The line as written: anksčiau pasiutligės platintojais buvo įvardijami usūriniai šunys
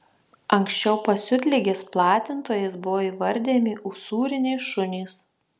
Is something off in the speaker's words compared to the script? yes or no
no